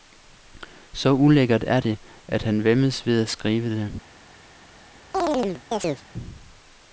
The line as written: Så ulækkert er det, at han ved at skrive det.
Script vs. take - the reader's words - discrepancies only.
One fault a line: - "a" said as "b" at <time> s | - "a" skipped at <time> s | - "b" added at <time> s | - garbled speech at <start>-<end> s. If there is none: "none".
- "væmmes" added at 2.6 s